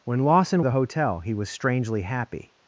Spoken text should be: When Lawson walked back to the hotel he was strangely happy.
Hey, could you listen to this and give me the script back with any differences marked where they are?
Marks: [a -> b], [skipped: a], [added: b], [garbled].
When Lawson [skipped: walked back to] the hotel he was strangely happy.